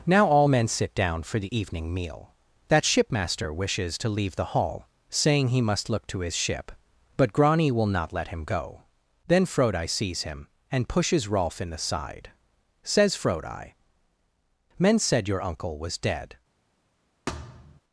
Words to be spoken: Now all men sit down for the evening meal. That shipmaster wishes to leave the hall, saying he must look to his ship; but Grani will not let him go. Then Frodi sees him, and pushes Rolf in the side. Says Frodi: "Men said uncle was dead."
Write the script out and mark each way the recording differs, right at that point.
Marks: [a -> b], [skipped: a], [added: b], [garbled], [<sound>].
Now all men sit down for the evening meal. That shipmaster wishes to leave the hall, saying he must look to his ship; but Grani will not let him go. Then Frodi sees him, and pushes Rolf in the side. Says Frodi: "Men said [added: your] uncle was dead." [thud]